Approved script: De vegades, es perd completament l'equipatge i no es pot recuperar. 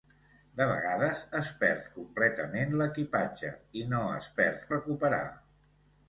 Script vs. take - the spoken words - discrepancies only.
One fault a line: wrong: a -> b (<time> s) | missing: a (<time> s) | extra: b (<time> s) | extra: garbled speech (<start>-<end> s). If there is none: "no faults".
wrong: pot -> perd (4.4 s)